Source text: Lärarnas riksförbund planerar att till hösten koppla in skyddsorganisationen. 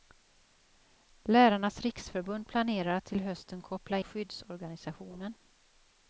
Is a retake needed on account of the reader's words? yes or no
yes